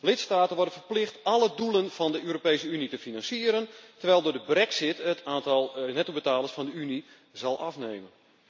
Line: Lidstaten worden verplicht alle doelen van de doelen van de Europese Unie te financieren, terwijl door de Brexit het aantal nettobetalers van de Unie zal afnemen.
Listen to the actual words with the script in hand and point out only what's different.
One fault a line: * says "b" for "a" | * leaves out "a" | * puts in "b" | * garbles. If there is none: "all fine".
* leaves out "doelen van de"